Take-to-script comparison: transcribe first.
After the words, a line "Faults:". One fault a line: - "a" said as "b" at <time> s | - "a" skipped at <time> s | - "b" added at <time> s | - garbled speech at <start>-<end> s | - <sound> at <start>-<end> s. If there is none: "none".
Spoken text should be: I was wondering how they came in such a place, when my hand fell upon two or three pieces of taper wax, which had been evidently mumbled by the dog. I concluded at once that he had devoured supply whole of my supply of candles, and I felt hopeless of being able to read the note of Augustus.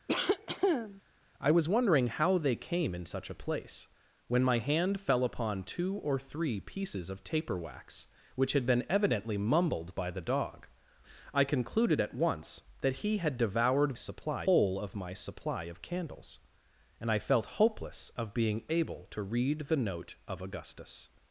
I was wondering how they came in such a place, when my hand fell upon two or three pieces of taper wax, which had been evidently mumbled by the dog. I concluded at once that he had devoured supply whole of my supply of candles, and I felt hopeless of being able to read the note of Augustus.
Faults:
- cough at 0.1-1.0 s